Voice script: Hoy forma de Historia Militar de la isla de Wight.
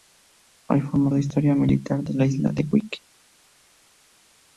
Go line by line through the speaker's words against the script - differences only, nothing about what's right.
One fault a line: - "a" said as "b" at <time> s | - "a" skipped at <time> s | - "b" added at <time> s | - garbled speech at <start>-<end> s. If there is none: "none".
none